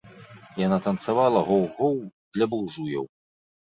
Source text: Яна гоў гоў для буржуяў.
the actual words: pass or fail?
fail